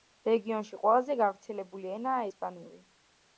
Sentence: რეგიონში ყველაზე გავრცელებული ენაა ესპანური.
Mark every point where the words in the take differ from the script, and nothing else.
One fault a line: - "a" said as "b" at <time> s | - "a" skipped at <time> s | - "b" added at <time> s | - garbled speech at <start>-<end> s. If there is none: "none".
none